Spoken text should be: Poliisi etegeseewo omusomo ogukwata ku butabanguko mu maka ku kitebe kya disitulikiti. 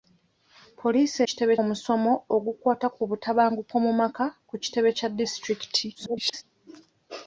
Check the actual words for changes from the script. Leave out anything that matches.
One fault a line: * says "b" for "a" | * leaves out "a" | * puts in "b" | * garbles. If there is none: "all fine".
* says "kitebe" for "etegeseewo"
* garbles